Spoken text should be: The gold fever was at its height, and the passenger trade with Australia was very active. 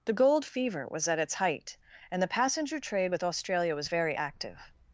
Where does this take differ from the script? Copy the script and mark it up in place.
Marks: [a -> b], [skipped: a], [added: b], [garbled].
The gold fever was at its height, and the passenger trade with Australia was very active.